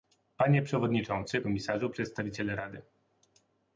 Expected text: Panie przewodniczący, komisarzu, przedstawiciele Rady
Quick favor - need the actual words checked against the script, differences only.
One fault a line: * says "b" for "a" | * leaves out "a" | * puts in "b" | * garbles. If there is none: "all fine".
all fine